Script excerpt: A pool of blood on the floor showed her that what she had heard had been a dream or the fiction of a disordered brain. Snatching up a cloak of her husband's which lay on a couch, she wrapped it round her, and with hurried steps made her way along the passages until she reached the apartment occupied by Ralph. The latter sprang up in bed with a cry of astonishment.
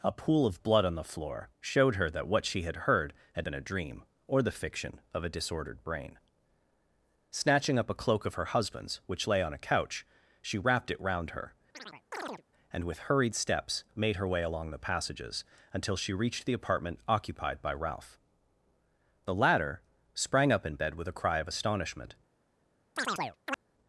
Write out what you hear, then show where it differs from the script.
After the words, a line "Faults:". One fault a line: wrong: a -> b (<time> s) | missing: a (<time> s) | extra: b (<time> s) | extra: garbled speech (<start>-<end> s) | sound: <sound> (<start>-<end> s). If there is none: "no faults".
A pool of blood on the floor showed her that what she had heard had been a dream or the fiction of a disordered brain. Snatching up a cloak of her husband's which lay on a couch, she wrapped it round her, and with hurried steps made her way along the passages until she reached the apartment occupied by Ralph. The latter sprang up in bed with a cry of astonishment.
Faults:
sound: chirp (11.7-12.4 s)
sound: chirp (23.0-23.6 s)